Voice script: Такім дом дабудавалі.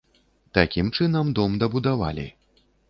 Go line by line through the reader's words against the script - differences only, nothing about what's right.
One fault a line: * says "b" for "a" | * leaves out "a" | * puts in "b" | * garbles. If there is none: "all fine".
* puts in "чынам"